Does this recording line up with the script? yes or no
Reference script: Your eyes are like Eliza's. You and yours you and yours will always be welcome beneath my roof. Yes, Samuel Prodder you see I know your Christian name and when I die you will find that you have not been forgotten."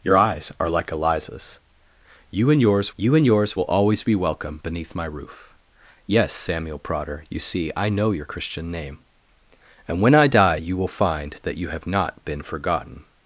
yes